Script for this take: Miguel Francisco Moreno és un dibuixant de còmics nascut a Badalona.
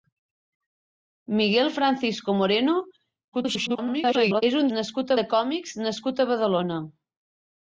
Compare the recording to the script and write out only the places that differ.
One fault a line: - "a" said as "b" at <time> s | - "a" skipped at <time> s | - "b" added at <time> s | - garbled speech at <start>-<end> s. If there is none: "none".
- garbled speech at 3.3-4.4 s
- "dibuixant" said as "nascut" at 4.8 s